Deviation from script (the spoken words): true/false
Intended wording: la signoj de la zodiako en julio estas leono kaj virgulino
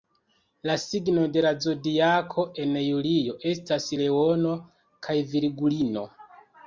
false